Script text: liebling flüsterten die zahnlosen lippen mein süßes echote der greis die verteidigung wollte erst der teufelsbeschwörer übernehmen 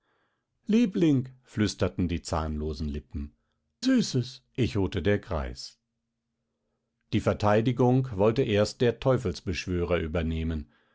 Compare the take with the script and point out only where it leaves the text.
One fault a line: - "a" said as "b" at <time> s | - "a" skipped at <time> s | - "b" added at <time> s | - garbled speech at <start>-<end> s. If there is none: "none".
- "mein" skipped at 3.4 s